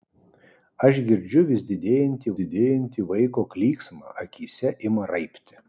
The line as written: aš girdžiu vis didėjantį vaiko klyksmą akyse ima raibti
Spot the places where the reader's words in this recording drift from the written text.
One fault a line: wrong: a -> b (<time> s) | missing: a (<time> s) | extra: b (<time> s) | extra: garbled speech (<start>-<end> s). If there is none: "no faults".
extra: didėjantį (2.4 s)